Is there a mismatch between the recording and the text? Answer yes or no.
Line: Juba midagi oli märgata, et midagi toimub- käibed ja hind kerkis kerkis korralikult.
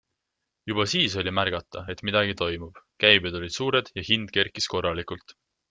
yes